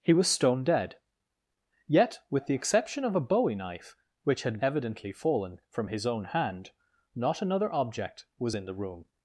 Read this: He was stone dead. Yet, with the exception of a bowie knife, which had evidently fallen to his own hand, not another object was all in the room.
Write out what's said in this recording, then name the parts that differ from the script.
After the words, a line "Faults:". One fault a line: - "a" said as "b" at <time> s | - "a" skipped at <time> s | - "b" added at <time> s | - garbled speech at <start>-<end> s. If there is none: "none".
He was stone dead. Yet, with the exception of a bowie knife, which had evidently fallen from his own hand, not another object was in the room.
Faults:
- "to" said as "from" at 5.7 s
- "all" skipped at 8.6 s